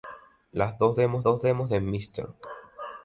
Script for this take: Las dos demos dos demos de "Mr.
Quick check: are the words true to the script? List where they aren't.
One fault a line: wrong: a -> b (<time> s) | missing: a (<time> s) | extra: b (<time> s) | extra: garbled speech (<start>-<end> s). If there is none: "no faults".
no faults